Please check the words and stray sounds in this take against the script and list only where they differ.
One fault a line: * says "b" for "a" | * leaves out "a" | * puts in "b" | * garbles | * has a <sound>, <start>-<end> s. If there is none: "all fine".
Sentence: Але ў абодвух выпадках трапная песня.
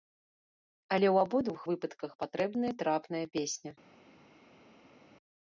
* puts in "патрэбная"